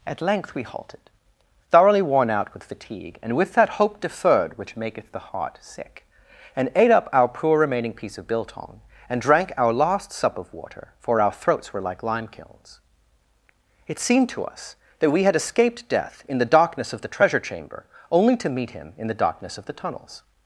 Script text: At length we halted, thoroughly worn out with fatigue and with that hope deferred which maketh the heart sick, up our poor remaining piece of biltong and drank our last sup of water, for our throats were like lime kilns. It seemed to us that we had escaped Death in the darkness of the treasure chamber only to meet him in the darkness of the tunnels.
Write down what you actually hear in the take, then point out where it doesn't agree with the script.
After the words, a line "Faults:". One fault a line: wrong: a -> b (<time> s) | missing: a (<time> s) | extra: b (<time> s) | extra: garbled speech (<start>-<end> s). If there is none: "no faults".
At length we halted, thoroughly worn out with fatigue and with that hope deferred which maketh the heart sick, and ate up our poor remaining piece of biltong and drank our last sup of water, for our throats were like lime kilns. It seemed to us that we had escaped Death in the darkness of the treasure chamber only to meet him in the darkness of the tunnels.
Faults:
extra: and ate (6.5 s)